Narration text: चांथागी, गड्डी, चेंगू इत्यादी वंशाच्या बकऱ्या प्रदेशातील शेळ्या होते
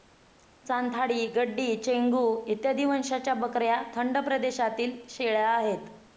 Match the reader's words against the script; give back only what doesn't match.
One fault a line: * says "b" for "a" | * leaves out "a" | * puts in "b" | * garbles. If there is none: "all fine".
* puts in "थंड"
* says "आहेत" for "होते"